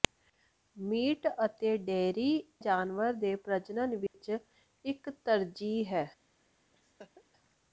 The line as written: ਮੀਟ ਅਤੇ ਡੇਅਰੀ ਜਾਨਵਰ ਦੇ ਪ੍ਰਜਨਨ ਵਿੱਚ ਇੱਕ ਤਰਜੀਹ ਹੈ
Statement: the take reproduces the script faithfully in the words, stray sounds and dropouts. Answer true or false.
false